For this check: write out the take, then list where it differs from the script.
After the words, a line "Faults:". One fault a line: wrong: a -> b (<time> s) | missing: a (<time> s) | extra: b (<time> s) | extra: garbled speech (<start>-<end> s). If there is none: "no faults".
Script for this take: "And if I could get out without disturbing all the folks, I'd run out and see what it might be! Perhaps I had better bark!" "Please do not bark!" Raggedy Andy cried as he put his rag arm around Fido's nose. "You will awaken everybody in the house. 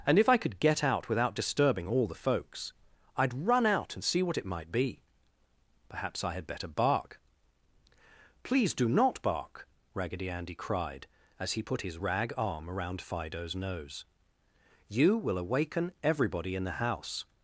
"And if I could get out without disturbing all the folks, I'd run out and see what it might be! Perhaps I had better bark!" "Please do not bark!" Raggedy Andy cried as he put his rag arm around Fido's nose. "You will awaken everybody in the house.
Faults:
no faults